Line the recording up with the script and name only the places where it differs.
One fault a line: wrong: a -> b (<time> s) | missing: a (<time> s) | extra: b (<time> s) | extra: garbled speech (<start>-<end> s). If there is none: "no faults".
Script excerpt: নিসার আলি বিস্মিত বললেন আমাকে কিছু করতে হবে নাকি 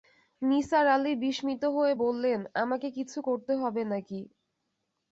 extra: হয়ে (1.8 s)